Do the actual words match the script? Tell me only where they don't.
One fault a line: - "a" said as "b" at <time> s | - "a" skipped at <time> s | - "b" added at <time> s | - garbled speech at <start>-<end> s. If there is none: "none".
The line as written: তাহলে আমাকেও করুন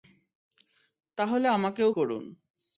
none